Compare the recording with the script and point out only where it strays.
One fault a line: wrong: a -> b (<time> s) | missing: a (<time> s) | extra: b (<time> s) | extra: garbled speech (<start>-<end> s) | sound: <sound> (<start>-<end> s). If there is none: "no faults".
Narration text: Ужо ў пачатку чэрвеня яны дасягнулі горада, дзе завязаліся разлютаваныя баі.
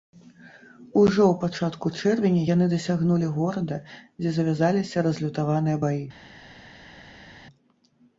no faults